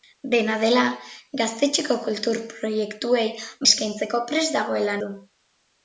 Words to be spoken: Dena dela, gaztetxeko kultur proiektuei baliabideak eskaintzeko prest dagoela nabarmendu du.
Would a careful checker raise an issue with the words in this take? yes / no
yes